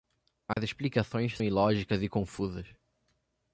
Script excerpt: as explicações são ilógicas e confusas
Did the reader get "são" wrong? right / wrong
wrong